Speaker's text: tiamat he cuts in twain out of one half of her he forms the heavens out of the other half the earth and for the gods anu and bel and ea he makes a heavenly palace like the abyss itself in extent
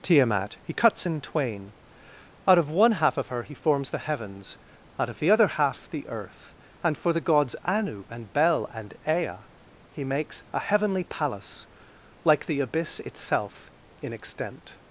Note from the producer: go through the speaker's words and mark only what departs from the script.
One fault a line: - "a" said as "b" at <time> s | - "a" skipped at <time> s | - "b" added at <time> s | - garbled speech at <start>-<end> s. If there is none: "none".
none